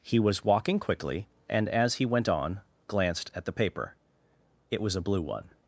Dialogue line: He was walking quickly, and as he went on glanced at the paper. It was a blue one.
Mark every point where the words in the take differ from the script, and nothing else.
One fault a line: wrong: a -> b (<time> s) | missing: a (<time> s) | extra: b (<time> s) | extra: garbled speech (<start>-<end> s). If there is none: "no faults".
no faults